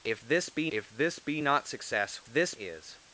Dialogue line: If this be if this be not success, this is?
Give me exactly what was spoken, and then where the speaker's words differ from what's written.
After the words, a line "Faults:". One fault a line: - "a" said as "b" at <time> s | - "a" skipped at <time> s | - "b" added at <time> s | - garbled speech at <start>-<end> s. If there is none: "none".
If this be if this be not success, this is?
Faults:
none